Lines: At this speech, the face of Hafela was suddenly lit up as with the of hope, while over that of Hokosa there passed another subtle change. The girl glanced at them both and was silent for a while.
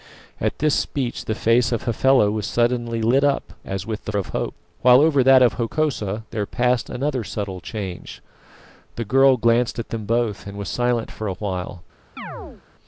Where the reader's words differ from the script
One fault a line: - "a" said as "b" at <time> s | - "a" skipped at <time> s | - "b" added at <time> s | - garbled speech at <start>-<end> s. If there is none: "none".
none